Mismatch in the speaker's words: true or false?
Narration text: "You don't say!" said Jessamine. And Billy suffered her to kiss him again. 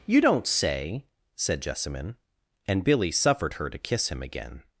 false